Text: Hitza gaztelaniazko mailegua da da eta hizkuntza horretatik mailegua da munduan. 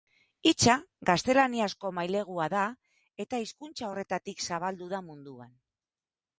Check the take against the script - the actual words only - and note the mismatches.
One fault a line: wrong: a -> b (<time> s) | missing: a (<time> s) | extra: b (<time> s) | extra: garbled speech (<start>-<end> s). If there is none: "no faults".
missing: da (2.6 s)
wrong: mailegua -> zabaldu (4.5 s)